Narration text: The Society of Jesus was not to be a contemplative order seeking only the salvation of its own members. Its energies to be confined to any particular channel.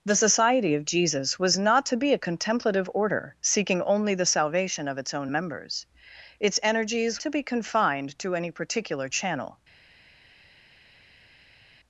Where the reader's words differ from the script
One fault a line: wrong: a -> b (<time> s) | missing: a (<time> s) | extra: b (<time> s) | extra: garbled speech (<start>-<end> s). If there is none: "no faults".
no faults